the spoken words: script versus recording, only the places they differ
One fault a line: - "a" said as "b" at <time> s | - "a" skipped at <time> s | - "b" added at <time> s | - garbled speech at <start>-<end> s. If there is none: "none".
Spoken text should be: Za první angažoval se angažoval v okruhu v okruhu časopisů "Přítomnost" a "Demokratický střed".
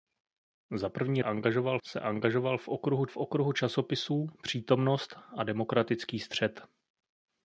none